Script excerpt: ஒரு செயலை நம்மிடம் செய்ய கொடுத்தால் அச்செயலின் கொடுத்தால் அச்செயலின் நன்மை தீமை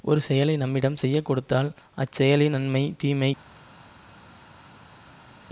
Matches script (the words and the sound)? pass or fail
fail